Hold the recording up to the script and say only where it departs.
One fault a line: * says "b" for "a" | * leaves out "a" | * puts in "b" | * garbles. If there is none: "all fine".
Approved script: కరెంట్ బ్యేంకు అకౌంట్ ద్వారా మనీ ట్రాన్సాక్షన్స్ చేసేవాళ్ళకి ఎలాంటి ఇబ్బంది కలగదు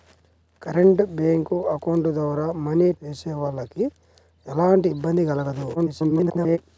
* leaves out "ట్రాన్సాక్షన్స్"
* garbles